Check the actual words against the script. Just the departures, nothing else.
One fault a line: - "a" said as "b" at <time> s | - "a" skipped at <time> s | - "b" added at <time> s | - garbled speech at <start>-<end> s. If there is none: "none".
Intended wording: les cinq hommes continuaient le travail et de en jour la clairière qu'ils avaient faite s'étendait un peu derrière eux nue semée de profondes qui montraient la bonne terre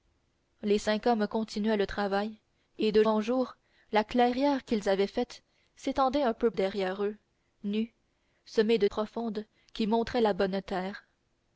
none